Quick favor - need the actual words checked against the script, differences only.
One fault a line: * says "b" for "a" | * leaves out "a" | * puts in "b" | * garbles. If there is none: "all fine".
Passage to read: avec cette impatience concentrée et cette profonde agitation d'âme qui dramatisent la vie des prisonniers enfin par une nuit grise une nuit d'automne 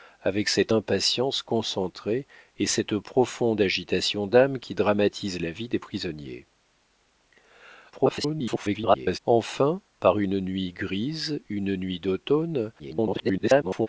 * garbles
* garbles